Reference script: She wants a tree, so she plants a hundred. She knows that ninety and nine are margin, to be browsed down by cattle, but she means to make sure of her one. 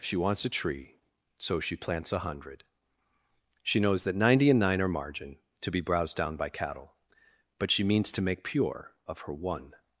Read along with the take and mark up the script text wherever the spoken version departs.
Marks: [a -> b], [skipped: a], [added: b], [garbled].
She wants a tree, so she plants a hundred. She knows that ninety and nine are margin, to be browsed down by cattle, but she means to make [sure -> pure] of her one.